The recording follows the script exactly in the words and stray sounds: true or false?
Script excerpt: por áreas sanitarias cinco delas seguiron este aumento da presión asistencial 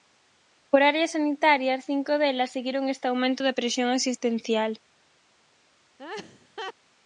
false